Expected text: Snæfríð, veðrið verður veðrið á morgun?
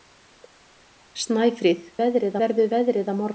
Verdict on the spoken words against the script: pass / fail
pass